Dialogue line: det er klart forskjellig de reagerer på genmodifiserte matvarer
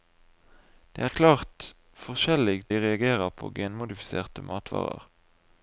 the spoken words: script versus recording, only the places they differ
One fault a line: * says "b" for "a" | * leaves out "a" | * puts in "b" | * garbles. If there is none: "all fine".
all fine